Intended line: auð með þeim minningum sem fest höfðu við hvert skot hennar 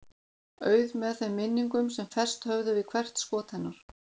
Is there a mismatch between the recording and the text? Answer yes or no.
no